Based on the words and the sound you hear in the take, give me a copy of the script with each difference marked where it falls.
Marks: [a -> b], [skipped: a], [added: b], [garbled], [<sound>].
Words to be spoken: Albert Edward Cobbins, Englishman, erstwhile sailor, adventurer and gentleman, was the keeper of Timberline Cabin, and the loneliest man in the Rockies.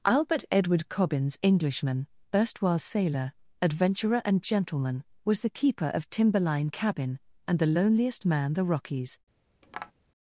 Albert Edward Cobbins, Englishman, erstwhile sailor, adventurer and gentleman, was the keeper of Timberline Cabin, and the loneliest man [skipped: in] the Rockies. [tap]